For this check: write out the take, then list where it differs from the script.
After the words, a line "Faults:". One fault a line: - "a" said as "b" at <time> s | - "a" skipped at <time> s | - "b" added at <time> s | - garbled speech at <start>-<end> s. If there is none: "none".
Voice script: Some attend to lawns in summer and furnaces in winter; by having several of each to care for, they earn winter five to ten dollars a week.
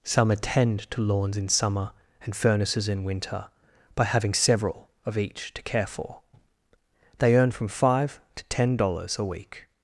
Some attend to lawns in summer and furnaces in winter; by having several of each to care for, they earn from five to ten dollars a week.
Faults:
- "winter" said as "from" at 7.5 s